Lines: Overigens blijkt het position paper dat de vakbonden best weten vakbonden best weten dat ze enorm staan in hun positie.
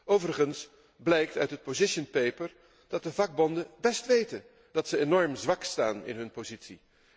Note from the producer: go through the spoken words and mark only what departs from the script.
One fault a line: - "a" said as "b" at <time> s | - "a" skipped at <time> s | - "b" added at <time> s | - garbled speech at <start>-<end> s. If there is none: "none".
- "uit" added at 1.4 s
- "vakbonden best weten" skipped at 4.4 s
- "zwak" added at 5.3 s